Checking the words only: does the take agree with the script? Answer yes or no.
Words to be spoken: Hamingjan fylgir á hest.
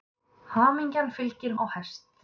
yes